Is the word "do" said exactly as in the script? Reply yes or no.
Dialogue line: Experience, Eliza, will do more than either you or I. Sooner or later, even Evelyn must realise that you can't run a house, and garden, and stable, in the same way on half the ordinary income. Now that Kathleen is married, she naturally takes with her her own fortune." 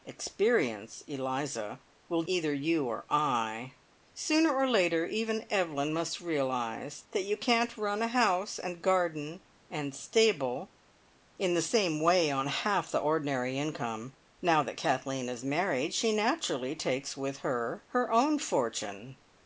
no